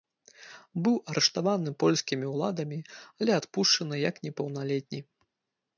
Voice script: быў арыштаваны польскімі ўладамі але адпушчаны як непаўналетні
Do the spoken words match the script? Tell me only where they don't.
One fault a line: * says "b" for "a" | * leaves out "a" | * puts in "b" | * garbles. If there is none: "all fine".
all fine